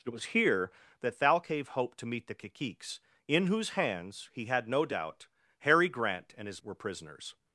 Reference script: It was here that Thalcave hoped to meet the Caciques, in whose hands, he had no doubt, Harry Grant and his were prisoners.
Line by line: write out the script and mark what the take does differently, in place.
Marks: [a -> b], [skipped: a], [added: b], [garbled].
It was here that Thalcave hoped to meet the Caciques, in whose hands, he had no doubt, Harry Grant and his were prisoners.